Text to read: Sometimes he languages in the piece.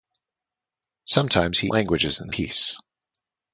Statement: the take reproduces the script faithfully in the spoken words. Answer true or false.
true